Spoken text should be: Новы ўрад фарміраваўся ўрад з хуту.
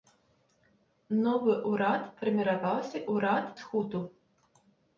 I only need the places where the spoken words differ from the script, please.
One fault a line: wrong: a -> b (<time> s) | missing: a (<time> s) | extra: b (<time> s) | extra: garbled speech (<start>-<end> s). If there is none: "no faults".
no faults